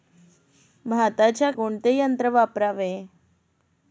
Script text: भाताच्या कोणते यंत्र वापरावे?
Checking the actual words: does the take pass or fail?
pass